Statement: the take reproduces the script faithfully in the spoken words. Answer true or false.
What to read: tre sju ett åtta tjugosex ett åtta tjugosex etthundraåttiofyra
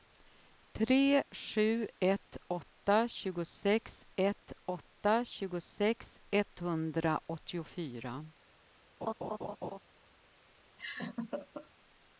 true